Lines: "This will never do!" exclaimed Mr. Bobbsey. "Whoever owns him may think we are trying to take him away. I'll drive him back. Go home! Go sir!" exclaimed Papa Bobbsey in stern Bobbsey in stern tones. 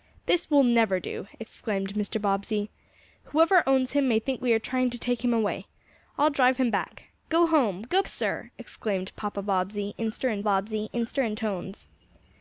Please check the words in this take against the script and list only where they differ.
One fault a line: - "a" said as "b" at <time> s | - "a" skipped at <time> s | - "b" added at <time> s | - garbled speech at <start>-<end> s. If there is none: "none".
none